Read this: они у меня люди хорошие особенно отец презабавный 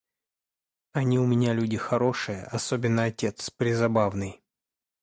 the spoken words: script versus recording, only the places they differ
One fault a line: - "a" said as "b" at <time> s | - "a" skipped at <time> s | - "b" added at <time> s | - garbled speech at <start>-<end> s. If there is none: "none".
none